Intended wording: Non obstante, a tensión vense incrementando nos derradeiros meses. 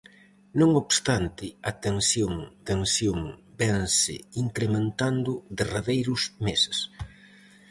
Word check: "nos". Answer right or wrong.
wrong